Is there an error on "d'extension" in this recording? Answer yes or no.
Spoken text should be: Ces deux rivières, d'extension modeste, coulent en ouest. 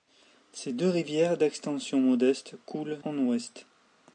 no